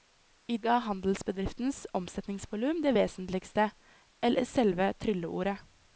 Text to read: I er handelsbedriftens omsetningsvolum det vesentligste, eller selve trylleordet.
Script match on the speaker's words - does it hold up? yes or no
yes